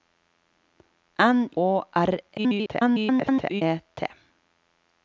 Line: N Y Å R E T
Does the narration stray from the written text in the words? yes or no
yes